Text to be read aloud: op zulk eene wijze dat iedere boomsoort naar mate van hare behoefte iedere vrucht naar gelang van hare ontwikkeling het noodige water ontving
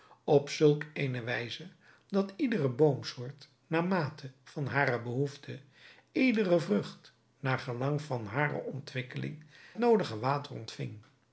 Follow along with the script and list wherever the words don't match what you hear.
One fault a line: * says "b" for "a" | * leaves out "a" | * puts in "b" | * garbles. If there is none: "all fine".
* leaves out "het"